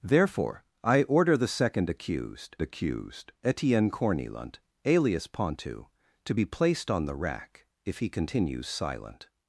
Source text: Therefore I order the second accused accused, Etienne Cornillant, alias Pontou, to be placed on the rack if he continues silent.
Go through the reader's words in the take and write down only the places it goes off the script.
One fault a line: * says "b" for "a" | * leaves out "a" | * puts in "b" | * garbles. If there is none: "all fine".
all fine